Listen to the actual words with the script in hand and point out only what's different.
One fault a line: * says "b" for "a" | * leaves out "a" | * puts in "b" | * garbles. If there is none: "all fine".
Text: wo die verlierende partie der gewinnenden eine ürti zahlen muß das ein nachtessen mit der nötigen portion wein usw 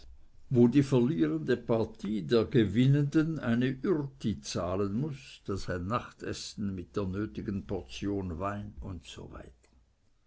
all fine